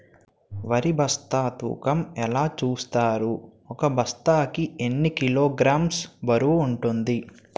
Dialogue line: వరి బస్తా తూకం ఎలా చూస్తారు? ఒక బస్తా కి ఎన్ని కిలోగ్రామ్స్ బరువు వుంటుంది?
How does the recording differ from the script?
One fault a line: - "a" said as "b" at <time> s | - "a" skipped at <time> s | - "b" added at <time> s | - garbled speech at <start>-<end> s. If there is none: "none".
none